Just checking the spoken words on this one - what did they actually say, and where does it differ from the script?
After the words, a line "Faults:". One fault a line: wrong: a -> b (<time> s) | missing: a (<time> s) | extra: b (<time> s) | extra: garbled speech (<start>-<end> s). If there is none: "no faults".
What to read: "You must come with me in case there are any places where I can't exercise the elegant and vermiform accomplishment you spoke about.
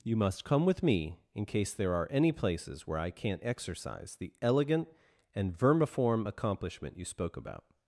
"You must come with me in case there are any places where I can't exercise the elegant and vermiform accomplishment you spoke about.
Faults:
no faults